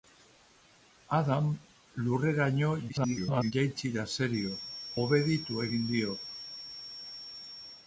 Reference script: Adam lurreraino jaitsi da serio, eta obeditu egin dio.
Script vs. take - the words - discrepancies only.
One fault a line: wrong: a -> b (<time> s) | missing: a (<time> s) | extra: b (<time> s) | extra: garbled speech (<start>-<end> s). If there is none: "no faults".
extra: garbled speech (2.9-3.5 s)
missing: eta (4.5 s)